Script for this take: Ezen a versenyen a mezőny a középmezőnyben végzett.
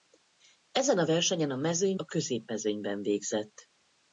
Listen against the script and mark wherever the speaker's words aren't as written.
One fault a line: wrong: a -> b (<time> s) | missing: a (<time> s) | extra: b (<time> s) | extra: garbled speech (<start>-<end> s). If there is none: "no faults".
no faults